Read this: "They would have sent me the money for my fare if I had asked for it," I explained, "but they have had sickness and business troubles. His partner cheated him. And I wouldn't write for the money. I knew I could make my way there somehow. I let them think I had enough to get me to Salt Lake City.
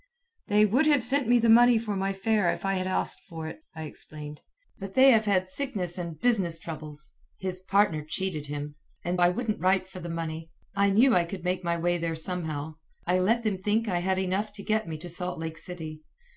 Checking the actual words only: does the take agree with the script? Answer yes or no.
yes